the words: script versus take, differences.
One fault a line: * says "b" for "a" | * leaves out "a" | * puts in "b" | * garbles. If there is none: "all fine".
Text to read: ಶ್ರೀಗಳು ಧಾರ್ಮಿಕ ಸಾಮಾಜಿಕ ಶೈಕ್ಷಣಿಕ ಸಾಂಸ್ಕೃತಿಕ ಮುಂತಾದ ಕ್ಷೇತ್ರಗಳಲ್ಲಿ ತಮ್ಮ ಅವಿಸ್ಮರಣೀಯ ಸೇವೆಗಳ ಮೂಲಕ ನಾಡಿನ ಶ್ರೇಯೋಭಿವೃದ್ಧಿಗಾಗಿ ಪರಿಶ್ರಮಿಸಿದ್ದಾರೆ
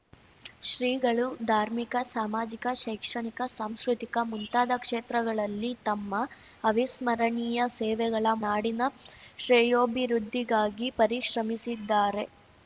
* leaves out "ಮೂಲಕ"